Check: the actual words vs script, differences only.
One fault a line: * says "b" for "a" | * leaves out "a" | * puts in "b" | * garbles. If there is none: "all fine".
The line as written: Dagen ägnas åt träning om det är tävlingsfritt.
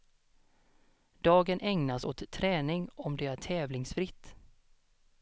all fine